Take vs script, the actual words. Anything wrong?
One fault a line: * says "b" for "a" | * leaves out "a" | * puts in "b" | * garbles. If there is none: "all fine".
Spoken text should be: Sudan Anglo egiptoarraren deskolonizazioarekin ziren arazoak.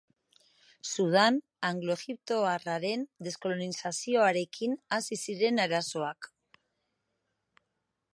* puts in "hasi"